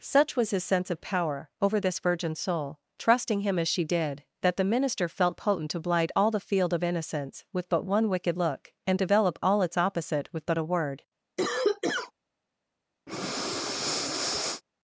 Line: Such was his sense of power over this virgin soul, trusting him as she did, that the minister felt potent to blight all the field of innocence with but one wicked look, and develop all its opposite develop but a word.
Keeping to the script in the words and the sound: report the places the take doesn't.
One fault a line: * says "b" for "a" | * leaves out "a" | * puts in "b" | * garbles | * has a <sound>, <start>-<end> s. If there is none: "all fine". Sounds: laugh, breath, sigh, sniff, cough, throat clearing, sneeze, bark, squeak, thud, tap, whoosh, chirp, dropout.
* says "with" for "develop"
* has a cough, 11.4-12.1 s
* has a breath, 13.1-14.6 s